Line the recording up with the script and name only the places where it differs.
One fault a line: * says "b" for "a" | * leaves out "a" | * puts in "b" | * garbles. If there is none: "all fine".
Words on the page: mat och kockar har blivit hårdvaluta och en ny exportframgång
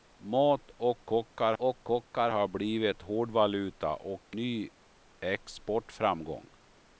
* puts in "och kockar"
* leaves out "en"